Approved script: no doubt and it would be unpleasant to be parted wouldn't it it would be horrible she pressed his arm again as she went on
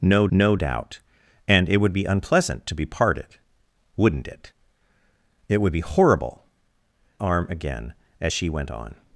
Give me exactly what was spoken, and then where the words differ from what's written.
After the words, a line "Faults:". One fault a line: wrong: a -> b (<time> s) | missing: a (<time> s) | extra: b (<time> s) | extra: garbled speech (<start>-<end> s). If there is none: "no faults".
no no doubt and it would be unpleasant to be parted wouldn't it it would be horrible arm again as she went on
Faults:
extra: no (0.3 s)
missing: she pressed his (6.4 s)